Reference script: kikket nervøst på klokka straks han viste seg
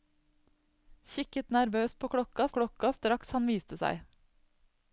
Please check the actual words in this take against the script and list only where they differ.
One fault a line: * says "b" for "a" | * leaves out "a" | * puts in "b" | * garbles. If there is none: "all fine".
* puts in "klokka"